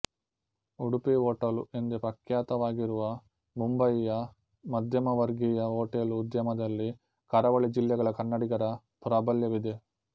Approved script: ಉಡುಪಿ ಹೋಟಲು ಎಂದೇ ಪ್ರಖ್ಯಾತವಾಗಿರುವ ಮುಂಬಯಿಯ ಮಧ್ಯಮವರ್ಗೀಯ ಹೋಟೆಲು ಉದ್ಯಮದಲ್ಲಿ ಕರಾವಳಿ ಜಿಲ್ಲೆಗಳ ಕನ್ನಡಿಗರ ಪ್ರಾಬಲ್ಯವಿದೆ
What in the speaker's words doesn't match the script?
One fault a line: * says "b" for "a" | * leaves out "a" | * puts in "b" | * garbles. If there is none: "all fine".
all fine